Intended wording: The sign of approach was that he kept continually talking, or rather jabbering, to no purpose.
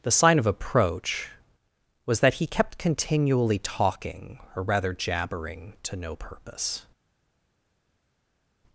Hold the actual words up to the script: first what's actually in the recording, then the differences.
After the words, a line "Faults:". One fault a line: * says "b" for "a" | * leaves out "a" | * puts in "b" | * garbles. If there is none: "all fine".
The sign of approach was that he kept continually talking, or rather jabbering, to no purpose.
Faults:
all fine